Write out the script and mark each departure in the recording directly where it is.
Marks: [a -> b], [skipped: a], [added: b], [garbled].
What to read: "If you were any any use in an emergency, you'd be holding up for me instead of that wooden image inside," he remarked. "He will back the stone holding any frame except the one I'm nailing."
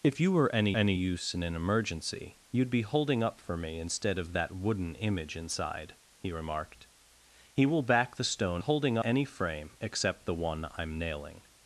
"If you were any any use in an emergency, you'd be holding up for me instead of that wooden image inside," he remarked. "He will back the stone holding any frame except the one I'm nailing."